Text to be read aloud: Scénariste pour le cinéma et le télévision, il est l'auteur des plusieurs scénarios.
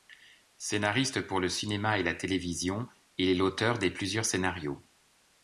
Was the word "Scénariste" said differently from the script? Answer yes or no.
no